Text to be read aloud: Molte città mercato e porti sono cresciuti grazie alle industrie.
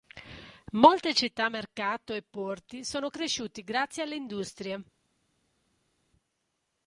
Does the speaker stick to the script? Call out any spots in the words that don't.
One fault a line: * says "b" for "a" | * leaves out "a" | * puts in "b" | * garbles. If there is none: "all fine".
all fine